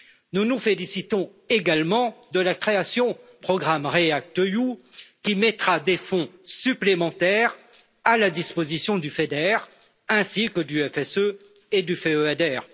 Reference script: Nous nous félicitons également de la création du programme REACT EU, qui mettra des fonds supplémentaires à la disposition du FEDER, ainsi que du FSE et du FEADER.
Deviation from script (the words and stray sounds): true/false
true